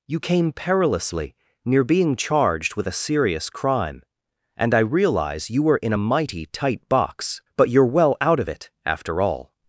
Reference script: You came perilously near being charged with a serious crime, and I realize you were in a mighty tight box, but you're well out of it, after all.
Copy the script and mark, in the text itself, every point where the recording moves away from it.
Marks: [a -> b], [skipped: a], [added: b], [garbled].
You came perilously near being charged with a serious crime, and I realize you were in a mighty tight box, but you're well out of it, after all.